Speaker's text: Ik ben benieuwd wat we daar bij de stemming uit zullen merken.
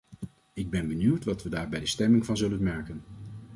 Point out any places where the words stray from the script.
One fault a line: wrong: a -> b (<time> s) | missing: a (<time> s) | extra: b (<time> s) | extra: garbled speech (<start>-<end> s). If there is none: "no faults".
wrong: uit -> van (2.3 s)